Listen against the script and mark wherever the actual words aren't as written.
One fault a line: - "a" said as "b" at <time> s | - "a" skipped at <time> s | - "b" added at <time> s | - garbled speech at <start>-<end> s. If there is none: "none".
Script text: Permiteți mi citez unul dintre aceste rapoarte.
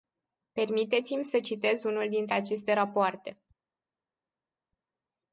- "să" added at 1.2 s